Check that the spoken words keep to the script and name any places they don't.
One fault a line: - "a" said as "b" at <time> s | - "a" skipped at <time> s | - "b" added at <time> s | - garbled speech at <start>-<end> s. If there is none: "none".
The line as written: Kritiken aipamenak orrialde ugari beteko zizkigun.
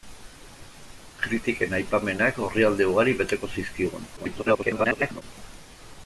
- garbled speech at 4.2-5.2 s